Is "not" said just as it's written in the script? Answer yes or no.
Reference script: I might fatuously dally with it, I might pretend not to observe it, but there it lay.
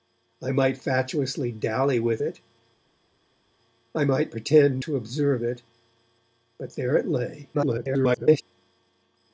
no